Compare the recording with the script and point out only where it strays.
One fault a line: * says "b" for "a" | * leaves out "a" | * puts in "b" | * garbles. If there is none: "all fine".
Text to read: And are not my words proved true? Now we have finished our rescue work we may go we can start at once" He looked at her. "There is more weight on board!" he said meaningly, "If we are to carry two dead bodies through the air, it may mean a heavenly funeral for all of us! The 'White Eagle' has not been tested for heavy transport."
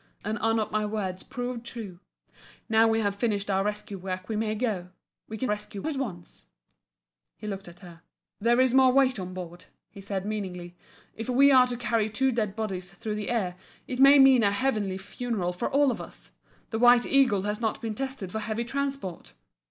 * says "rescue" for "start"